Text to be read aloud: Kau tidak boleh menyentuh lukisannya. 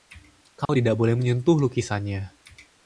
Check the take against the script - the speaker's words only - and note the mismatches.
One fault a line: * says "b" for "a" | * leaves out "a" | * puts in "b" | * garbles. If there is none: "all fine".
all fine